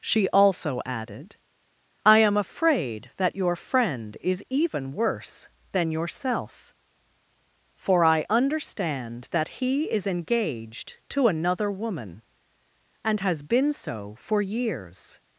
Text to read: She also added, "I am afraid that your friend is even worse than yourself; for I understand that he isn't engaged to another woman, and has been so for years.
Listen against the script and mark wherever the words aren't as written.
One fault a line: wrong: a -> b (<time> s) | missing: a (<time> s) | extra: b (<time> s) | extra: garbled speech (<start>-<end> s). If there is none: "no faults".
wrong: isn't -> is (9.9 s)